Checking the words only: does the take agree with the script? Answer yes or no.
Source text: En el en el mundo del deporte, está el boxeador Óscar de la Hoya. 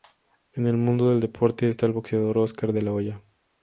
no